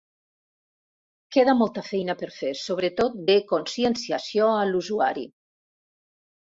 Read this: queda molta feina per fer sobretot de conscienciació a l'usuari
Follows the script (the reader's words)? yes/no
yes